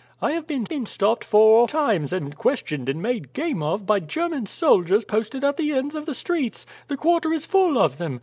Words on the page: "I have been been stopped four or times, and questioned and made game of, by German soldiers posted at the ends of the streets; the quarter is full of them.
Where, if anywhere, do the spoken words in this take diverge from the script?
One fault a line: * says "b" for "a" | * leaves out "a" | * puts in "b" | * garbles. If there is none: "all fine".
all fine